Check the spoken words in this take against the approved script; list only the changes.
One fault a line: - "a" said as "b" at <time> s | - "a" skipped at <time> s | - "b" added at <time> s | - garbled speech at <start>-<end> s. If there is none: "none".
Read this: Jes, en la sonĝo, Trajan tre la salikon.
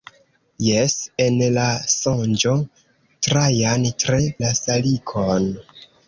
none